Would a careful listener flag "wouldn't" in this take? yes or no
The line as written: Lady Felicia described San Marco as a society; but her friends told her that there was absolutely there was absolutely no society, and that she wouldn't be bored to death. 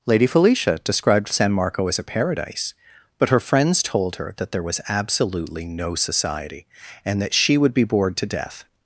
yes